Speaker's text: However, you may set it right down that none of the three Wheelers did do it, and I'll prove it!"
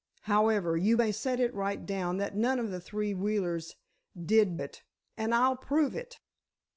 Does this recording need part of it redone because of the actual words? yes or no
yes